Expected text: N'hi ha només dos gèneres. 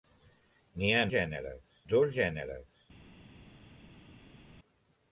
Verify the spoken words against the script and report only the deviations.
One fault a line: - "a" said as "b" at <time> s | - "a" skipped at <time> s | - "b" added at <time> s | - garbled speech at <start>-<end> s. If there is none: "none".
- "només" said as "gèneres" at 1.1 s